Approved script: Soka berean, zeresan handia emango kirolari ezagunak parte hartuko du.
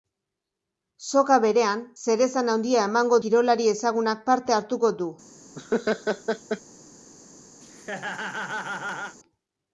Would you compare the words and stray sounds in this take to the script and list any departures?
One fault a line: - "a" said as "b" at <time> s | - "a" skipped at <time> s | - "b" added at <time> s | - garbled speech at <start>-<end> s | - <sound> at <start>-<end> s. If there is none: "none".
- laugh at 5.6-6.6 s
- laugh at 7.6-9.2 s